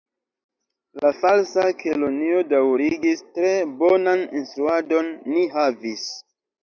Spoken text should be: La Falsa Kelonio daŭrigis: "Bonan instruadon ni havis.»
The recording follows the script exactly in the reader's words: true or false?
false